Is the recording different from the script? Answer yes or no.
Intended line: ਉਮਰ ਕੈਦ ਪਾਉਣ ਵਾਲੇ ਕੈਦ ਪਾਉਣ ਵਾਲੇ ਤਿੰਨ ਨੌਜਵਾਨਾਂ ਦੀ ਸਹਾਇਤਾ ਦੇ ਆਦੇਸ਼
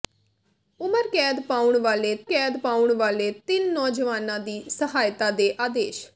no